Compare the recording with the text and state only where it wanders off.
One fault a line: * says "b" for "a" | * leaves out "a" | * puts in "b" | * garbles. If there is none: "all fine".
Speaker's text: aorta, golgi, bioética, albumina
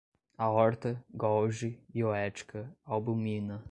all fine